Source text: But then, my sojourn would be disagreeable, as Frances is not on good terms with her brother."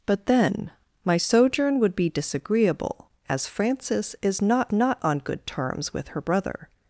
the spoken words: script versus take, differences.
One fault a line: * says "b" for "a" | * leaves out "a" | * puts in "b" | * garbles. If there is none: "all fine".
* puts in "not"